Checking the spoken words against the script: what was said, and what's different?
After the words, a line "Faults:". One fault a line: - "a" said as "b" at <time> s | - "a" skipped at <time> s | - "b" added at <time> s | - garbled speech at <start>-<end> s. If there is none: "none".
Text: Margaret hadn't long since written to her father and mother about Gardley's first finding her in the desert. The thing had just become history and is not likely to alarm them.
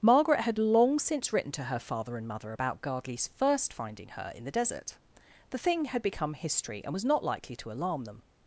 Margaret had long since written to her father and mother about Gardley's first finding her in the desert. The thing had become history and was not likely to alarm them.
Faults:
- "hadn't" said as "had" at 0.4 s
- "just" skipped at 6.0 s
- "is" said as "was" at 6.9 s